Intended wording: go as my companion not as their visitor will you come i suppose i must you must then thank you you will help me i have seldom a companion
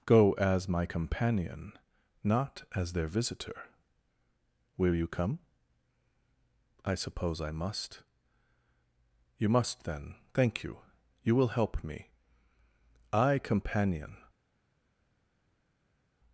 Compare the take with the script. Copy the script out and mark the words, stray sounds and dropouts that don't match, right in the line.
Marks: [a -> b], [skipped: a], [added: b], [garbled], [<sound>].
go as my companion not as their visitor will you come i suppose i must you must then thank you you will help me i [skipped: have seldom a] companion